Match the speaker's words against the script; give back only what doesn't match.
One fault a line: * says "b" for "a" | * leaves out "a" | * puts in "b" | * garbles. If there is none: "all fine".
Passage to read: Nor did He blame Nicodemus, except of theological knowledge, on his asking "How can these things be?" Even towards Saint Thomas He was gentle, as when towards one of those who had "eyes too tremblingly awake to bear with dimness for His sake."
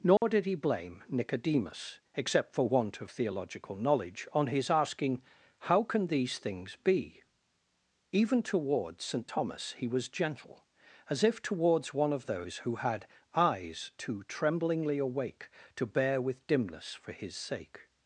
* puts in "for want"
* says "if" for "when"